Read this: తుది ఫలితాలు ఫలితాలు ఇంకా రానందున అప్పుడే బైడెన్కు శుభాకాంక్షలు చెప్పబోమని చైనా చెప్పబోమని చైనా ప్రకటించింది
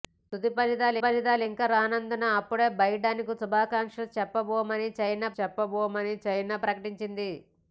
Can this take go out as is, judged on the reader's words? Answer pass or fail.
pass